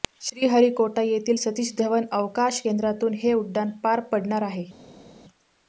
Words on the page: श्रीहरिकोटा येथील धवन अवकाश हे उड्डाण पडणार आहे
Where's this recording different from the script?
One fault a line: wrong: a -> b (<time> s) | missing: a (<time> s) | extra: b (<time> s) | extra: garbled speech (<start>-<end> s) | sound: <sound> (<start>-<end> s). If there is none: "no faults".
extra: सतीश (1.4 s)
extra: केंद्रातून (2.6 s)
extra: पार (3.8 s)